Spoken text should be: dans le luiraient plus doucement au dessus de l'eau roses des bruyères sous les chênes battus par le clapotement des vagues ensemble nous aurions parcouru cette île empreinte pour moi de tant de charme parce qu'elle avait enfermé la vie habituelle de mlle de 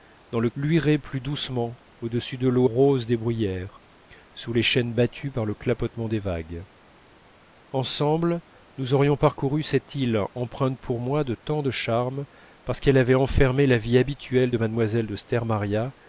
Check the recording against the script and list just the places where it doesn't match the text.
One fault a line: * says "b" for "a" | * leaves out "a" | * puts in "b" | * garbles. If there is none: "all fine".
all fine